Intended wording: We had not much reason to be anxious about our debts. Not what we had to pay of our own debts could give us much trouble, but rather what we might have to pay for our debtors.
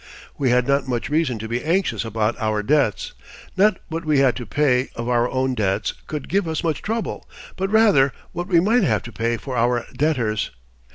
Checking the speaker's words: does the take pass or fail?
pass